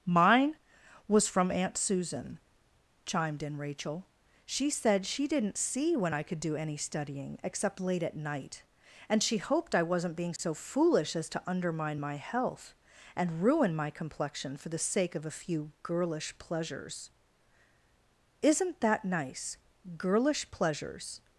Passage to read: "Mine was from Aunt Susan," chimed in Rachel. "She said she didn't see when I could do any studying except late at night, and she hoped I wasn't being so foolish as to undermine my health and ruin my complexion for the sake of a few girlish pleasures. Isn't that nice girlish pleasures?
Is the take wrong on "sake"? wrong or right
right